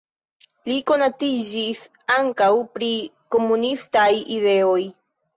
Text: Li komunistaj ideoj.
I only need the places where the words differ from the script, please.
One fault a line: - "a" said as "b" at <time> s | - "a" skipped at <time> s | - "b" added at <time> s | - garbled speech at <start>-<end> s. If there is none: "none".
- "konatiĝis ankaŭ pri" added at 0.9 s